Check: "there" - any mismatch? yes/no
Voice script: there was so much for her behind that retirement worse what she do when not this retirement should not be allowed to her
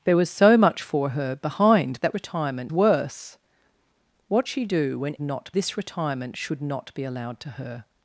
no